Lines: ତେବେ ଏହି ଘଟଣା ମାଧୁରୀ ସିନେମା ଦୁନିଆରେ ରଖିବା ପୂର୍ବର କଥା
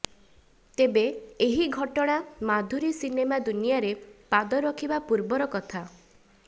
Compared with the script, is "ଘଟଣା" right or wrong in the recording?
right